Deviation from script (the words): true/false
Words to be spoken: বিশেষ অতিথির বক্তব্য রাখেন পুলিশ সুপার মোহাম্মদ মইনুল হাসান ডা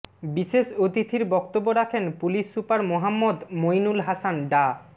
false